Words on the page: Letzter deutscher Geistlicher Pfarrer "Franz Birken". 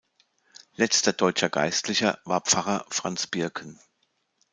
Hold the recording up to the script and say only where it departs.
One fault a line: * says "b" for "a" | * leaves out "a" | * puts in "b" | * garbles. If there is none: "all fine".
* puts in "war"